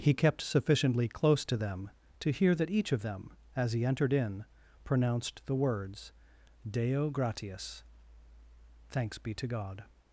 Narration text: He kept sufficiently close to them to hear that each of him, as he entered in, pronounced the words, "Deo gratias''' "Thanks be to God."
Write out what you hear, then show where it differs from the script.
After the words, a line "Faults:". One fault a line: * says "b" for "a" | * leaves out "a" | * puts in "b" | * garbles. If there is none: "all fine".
He kept sufficiently close to them to hear that each of them, as he entered in, pronounced the words, "Deo gratias''' "Thanks be to God."
Faults:
* says "them" for "him"